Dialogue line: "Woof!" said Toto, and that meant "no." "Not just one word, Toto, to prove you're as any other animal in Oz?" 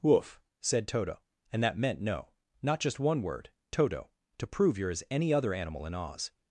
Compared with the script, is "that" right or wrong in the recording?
right